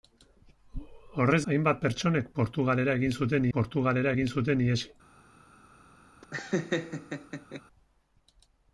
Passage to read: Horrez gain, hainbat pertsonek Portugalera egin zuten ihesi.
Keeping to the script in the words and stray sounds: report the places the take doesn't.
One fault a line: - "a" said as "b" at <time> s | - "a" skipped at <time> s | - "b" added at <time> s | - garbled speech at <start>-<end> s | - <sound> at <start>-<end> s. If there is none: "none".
- "gain" skipped at 1.4 s
- "Portugalera egin zuten" added at 3.6 s
- laugh at 6.2-7.6 s